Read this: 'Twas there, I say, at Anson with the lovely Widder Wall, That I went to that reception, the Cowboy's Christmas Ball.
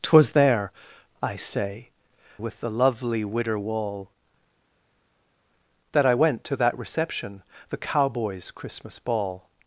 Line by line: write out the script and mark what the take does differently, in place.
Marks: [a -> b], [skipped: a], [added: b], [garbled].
'Twas there, I say, [skipped: at Anson] with the lovely Widder Wall, That I went to that reception, the Cowboy's Christmas Ball.